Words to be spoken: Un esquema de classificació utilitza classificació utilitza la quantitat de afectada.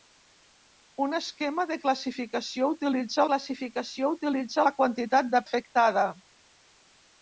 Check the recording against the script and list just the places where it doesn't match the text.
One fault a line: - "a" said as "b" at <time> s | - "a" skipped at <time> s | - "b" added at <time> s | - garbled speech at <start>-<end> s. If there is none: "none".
none